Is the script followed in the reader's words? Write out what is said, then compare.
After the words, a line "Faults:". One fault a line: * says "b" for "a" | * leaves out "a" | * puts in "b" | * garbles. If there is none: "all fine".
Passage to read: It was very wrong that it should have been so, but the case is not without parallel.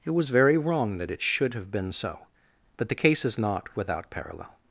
It was very wrong that it should have been so, but the case is not without parallel.
Faults:
all fine